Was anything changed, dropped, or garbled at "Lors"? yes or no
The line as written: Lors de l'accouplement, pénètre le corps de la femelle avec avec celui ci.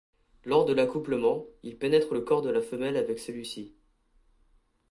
no